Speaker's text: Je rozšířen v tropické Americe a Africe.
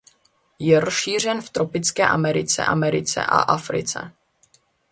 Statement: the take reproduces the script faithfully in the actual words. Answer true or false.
false